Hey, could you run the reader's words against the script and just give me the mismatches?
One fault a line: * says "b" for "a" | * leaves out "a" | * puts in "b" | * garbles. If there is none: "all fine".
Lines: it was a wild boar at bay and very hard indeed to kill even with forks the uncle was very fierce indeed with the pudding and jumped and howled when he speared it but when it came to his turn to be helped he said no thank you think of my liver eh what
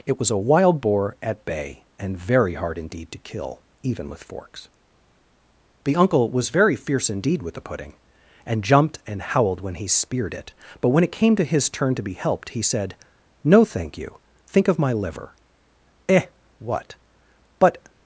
* puts in "but"